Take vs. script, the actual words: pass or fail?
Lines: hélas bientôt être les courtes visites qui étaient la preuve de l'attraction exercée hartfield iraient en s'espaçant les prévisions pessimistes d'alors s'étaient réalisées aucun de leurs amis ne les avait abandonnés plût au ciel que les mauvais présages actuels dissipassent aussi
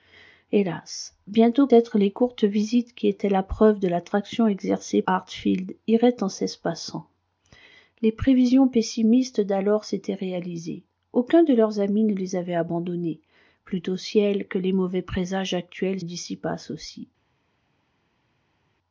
pass